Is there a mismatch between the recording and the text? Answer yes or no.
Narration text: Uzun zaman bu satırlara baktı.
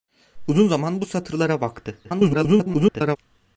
yes